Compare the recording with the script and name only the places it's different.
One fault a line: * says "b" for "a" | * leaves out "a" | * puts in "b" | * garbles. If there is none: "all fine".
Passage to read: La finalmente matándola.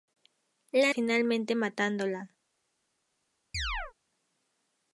all fine